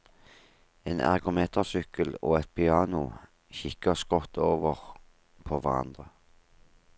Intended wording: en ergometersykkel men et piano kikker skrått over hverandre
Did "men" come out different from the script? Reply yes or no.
yes